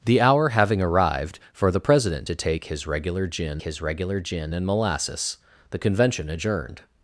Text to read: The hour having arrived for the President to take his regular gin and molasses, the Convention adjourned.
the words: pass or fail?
fail